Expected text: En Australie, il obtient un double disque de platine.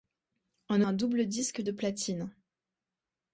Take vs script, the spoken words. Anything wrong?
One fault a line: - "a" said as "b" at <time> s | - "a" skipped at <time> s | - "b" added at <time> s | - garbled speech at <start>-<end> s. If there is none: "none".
- "Australie il obtient" skipped at 0.8 s